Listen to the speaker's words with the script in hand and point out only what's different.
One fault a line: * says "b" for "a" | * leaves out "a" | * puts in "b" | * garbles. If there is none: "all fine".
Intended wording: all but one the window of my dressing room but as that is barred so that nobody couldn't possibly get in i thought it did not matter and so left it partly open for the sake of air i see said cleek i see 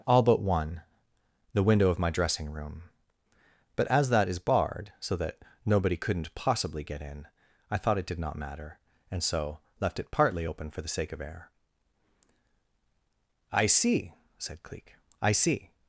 all fine